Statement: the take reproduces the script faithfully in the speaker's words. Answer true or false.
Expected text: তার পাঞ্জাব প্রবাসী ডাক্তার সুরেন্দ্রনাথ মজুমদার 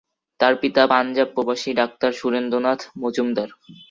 false